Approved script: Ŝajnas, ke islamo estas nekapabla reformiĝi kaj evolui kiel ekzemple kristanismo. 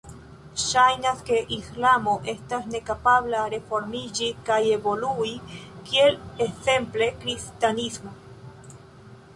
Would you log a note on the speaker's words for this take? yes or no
no